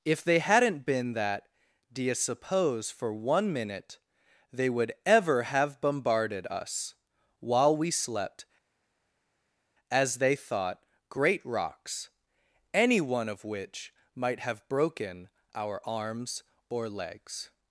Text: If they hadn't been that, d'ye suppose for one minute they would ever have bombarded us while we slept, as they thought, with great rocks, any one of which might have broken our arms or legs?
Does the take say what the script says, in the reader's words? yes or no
no